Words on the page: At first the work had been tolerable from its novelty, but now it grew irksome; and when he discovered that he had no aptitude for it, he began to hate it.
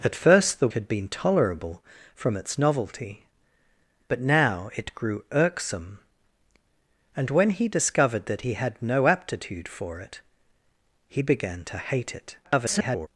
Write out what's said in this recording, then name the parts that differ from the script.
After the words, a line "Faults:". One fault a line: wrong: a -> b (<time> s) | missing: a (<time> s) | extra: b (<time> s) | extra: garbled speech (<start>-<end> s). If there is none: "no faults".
At first the had been tolerable from its novelty, but now it grew irksome; and when he discovered that he had no aptitude for it, he began to hate it. [garbled]
Faults:
missing: work (0.7 s)
extra: garbled speech (12.4-13.1 s)